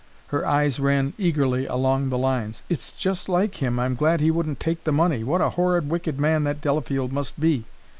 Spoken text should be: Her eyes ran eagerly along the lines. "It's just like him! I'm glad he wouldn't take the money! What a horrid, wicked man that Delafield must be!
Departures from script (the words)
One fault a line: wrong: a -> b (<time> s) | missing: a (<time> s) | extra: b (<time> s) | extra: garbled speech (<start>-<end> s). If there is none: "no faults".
no faults